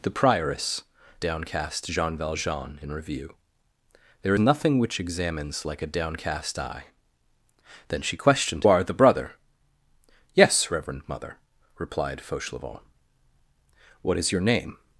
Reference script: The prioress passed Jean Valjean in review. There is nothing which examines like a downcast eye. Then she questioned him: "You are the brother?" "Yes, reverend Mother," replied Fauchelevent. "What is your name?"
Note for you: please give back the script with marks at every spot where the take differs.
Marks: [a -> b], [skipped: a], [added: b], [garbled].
The prioress [passed -> downcast] Jean Valjean in review. There [skipped: is] nothing which examines like a downcast eye. Then she questioned [skipped: him: "You] are the brother?" "Yes, reverend Mother," replied Fauchelevent. "What is your name?"